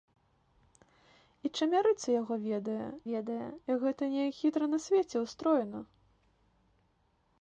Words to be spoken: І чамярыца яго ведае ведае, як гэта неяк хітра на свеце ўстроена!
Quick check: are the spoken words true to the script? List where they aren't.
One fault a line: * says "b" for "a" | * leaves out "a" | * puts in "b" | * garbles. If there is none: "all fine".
all fine